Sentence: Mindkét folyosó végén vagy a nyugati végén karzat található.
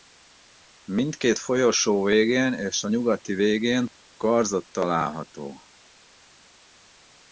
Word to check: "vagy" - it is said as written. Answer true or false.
false